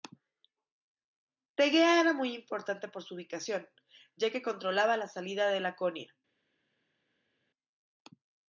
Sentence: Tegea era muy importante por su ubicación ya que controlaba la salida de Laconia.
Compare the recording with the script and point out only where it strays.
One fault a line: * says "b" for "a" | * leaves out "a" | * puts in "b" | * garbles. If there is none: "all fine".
all fine